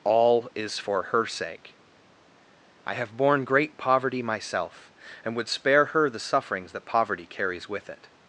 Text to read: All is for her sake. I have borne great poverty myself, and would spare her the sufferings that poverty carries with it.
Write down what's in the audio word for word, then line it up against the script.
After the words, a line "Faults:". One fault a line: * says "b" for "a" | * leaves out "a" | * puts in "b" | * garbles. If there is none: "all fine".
All is for her sake. I have borne great poverty myself, and would spare her the sufferings that poverty carries with it.
Faults:
all fine